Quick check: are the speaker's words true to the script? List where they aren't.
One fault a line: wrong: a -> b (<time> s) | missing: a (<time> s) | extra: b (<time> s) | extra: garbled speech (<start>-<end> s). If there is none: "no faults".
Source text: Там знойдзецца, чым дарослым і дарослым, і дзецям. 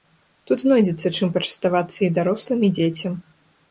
wrong: Там -> Тут (0.5 s)
wrong: дарослым -> пачаставацца (1.4 s)